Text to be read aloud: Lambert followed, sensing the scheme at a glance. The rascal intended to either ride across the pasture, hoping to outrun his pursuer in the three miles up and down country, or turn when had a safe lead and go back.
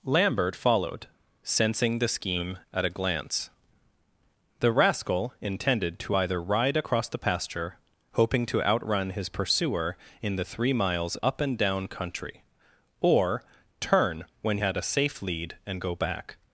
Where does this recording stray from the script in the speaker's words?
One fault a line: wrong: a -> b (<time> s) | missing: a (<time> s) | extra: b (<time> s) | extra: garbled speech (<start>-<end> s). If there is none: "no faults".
no faults